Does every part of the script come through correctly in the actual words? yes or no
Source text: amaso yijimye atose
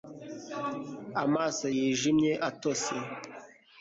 yes